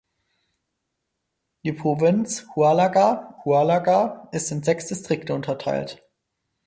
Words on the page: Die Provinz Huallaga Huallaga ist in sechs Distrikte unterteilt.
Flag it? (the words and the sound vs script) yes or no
no